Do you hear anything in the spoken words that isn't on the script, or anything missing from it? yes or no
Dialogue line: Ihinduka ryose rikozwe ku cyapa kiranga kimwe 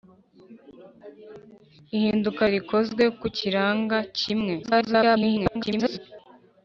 yes